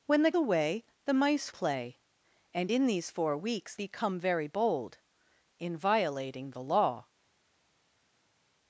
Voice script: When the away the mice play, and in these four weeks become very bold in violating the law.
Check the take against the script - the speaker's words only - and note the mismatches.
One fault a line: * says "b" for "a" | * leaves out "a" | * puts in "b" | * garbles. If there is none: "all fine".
all fine